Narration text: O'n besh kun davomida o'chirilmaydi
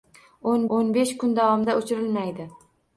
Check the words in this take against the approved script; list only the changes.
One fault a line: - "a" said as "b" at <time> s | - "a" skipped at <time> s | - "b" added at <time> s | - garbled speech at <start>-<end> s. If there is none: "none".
- "o'n" added at 0.8 s